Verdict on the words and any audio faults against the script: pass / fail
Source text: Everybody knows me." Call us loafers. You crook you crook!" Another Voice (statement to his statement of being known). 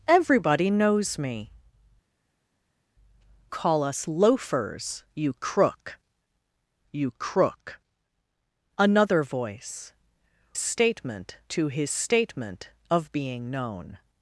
pass